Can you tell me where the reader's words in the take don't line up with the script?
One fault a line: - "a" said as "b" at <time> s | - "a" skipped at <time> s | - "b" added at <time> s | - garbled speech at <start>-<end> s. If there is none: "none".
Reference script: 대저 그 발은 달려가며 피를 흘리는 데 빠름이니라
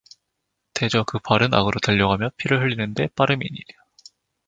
- "악으로" added at 1.5 s